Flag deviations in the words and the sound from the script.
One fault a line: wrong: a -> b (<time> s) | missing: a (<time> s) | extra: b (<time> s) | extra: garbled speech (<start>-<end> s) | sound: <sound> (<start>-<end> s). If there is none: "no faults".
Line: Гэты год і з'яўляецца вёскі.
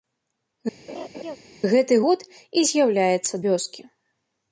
sound: laugh (0.9-1.4 s)